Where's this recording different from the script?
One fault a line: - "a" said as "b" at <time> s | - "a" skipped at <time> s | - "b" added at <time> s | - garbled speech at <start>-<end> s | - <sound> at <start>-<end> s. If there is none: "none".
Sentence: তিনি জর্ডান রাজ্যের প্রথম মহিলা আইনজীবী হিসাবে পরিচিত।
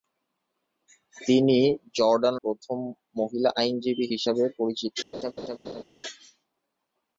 - "রাজ্যের" skipped at 2.4 s
- laugh at 5.1-5.8 s